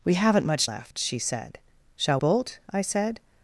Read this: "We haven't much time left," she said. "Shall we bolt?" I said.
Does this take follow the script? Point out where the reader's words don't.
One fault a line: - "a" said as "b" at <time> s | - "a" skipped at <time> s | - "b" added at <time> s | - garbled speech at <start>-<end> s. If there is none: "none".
- "time" skipped at 0.7 s
- "we" skipped at 2.2 s